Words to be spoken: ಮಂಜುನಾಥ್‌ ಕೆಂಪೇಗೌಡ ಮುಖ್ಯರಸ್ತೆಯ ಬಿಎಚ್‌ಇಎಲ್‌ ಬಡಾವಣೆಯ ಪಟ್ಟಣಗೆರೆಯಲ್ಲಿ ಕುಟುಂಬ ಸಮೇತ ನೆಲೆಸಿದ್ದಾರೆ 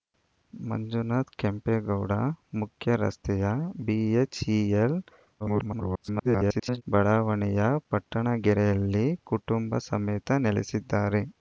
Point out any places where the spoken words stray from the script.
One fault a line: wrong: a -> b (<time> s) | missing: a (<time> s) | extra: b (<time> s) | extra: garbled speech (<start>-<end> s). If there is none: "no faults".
extra: garbled speech (5.4-6.8 s)